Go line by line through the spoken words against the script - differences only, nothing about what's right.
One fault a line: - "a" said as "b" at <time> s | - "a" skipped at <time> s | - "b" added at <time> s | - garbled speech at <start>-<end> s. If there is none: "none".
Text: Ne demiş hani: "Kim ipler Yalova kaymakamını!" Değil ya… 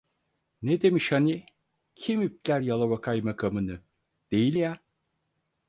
none